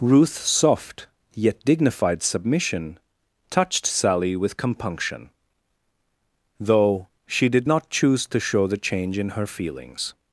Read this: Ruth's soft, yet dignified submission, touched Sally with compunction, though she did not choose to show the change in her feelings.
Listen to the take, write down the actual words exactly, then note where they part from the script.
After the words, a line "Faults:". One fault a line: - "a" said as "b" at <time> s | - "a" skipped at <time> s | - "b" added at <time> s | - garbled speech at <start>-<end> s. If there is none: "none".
Ruth's soft, yet dignified submission, touched Sally with compunction, though she did not choose to show the change in her feelings.
Faults:
none